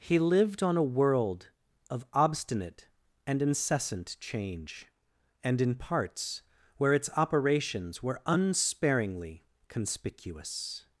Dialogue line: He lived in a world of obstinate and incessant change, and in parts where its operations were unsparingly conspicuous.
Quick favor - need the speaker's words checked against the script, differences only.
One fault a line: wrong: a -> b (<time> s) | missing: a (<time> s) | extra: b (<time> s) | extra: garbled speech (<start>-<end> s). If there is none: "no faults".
wrong: in -> on (0.6 s)